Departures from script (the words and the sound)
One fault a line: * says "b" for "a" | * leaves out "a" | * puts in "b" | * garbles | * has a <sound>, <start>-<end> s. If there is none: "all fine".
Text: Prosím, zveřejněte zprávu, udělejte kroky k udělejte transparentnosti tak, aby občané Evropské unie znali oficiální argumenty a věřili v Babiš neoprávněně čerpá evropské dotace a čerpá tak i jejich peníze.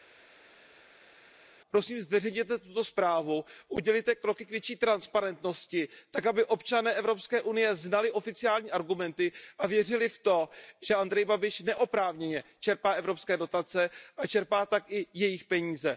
* puts in "tuto"
* says "větší" for "udělejte"
* puts in "to že Andrej"